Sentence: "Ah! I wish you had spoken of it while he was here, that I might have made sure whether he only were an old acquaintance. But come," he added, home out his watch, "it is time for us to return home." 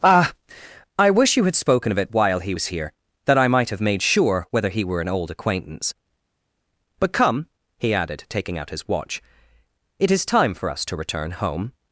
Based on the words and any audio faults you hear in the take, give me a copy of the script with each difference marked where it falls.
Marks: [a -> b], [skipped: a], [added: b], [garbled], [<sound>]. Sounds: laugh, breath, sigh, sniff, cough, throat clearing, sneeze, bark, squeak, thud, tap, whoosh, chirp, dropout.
"Ah! I wish you had spoken of it while he was here, that I might have made sure whether he [skipped: only] were an old acquaintance. But come," he added, [home -> taking] out his watch, "it is time for us to return home."